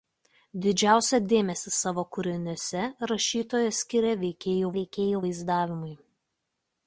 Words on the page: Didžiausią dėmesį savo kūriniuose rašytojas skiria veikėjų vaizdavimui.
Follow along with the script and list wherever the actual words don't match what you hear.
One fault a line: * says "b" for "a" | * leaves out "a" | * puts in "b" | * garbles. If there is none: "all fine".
* puts in "veikėjų"